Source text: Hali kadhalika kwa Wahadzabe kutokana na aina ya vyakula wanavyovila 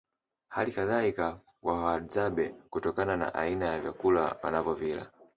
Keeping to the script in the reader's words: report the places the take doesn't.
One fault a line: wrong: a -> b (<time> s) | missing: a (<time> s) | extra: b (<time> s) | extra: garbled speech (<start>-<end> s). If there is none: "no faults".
no faults